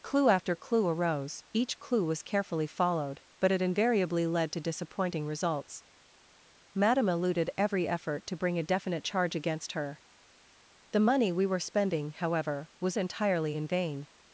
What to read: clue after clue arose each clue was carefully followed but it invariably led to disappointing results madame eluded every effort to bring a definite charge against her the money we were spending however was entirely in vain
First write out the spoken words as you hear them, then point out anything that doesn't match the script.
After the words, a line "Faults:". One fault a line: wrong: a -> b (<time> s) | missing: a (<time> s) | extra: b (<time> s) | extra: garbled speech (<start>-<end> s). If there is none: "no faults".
clue after clue arose each clue was carefully followed but it invariably led to disappointing results madame eluded every effort to bring a definite charge against her the money we were spending however was entirely in vain
Faults:
no faults